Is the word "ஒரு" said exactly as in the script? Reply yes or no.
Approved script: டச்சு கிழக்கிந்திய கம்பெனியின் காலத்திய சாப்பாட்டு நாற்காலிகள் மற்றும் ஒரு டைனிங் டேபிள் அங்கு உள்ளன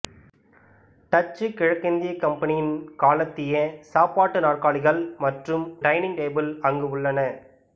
no